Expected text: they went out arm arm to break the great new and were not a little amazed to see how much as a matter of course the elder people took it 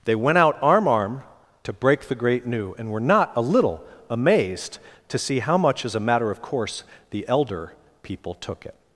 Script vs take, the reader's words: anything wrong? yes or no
no